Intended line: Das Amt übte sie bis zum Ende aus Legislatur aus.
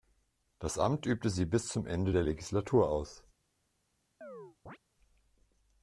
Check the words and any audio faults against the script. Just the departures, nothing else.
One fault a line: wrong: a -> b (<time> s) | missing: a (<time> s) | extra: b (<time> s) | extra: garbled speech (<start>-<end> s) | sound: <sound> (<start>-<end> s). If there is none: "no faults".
wrong: aus -> der (2.1 s)
sound: chirp (4.2-4.8 s)